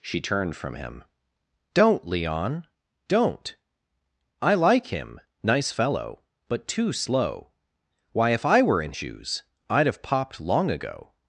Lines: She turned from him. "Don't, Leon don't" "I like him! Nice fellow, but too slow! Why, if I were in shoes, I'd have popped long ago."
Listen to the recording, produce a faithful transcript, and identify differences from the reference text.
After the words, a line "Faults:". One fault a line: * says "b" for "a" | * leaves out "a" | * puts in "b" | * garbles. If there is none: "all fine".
She turned from him. "Don't, Leon don't" "I like him! Nice fellow, but too slow! Why, if I were in shoes, I'd have popped long ago."
Faults:
all fine